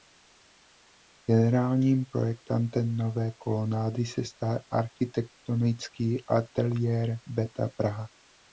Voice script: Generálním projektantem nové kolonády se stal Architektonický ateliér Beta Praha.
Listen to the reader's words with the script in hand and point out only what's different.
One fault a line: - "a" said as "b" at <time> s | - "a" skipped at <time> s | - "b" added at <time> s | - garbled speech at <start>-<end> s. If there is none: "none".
none